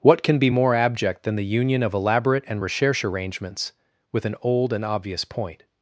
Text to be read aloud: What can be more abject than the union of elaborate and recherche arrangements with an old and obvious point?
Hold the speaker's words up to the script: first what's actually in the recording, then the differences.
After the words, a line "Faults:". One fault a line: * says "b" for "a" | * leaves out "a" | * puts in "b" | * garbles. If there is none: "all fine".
What can be more abject than the union of elaborate and recherche arrangements with an old and obvious point?
Faults:
all fine